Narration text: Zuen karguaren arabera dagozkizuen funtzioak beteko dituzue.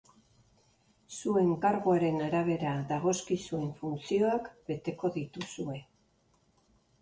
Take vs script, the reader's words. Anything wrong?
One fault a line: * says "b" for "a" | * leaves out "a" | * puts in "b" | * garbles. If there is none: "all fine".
all fine